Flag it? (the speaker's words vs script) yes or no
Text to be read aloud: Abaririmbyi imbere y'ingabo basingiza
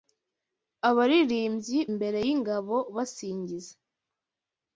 no